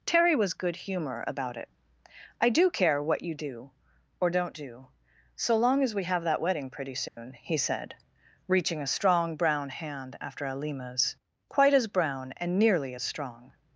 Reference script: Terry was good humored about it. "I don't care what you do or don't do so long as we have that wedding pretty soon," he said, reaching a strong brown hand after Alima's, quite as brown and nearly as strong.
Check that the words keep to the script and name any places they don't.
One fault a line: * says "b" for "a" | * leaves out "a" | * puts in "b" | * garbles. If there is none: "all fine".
* says "humor" for "humored"
* says "do" for "don't"